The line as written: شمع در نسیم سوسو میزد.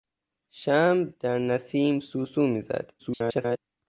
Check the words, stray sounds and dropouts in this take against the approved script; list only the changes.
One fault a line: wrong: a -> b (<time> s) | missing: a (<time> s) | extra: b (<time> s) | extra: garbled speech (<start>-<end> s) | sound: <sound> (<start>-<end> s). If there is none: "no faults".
extra: garbled speech (3.0-3.6 s)